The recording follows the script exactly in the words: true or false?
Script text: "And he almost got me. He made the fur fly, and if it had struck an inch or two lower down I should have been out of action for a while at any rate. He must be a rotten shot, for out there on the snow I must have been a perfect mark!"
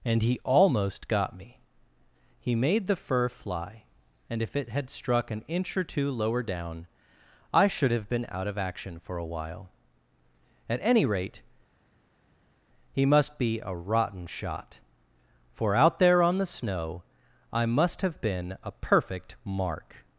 true